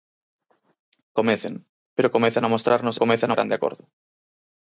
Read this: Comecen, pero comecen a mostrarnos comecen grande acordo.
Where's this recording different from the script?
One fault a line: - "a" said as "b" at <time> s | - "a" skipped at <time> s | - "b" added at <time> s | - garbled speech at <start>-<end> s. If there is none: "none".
none